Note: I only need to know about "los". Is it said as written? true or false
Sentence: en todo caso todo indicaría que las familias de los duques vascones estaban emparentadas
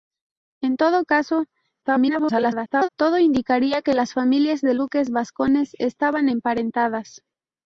false